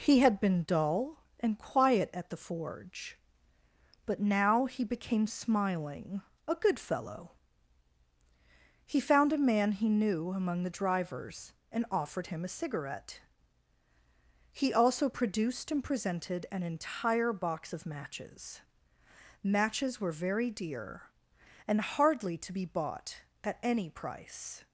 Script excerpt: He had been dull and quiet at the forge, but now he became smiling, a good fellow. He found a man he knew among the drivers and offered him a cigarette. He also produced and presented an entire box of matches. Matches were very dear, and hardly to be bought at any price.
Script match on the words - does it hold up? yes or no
yes